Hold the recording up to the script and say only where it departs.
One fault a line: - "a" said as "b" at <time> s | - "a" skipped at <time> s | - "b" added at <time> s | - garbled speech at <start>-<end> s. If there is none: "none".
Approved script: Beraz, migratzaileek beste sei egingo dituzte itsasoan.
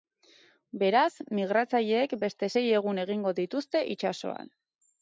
- "egun" added at 2.8 s